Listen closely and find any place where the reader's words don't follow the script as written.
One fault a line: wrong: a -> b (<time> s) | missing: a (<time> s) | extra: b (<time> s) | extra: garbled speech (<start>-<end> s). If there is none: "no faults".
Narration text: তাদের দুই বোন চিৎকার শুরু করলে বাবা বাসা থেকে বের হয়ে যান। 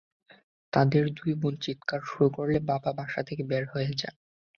no faults